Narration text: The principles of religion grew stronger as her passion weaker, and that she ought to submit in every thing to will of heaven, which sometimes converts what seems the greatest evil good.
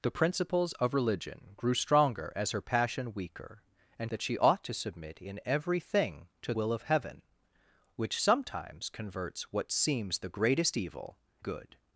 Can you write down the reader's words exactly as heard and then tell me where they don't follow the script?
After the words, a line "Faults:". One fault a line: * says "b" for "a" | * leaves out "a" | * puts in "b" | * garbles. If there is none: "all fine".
The principles of religion grew stronger as her passion weaker, and that she ought to submit in every thing to will of heaven, which sometimes converts what seems the greatest evil good.
Faults:
all fine